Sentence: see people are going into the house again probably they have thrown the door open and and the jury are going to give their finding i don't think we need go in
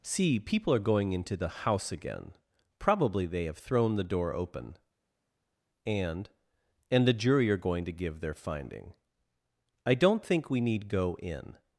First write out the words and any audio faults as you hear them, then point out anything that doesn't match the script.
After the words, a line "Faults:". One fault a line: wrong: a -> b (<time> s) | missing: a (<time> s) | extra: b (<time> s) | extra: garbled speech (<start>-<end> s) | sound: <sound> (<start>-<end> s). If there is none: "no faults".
see people are going into the house again probably they have thrown the door open and and the jury are going to give their finding i don't think we need go in
Faults:
no faults